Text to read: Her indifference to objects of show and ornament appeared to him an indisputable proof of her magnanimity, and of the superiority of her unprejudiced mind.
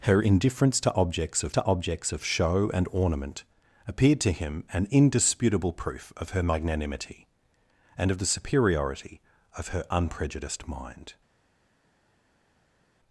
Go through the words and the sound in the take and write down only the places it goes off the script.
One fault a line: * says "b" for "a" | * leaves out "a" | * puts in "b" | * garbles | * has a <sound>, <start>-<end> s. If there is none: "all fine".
* puts in "to objects of"